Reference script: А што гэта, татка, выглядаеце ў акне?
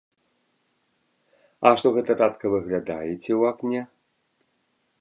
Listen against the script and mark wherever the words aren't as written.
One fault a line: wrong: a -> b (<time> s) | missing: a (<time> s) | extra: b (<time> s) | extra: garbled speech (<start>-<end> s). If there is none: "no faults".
no faults